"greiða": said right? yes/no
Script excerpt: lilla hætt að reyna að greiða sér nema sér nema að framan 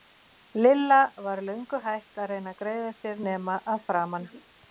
yes